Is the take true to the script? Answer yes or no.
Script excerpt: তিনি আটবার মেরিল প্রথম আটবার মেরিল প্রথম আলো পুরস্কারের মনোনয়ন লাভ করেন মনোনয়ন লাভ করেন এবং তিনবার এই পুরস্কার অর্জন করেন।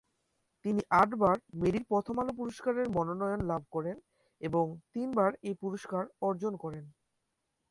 no